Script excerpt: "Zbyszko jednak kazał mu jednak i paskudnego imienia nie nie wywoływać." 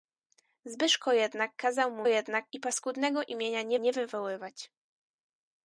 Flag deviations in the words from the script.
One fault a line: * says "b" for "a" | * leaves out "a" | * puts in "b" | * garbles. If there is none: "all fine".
all fine